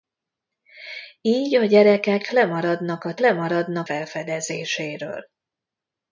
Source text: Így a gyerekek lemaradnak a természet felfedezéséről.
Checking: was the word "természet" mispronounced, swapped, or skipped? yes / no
yes